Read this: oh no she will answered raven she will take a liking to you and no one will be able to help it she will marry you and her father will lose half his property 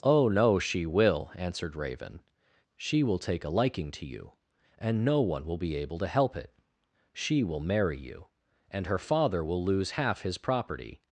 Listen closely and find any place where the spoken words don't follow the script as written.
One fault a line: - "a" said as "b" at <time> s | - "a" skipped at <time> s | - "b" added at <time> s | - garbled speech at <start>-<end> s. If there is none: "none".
none